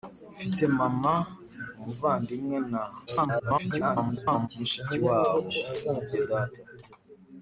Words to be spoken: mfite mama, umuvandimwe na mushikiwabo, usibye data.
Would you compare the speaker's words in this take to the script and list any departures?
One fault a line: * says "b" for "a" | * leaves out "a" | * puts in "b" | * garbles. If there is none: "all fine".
* garbles